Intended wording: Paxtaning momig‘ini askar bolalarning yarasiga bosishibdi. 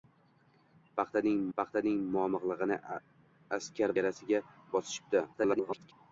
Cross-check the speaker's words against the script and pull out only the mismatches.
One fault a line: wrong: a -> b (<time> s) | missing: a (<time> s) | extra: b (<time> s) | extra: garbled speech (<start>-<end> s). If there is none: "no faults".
extra: paxtaning (1.6 s)
missing: bolalarning (4.0 s)
extra: garbled speech (5.3-5.9 s)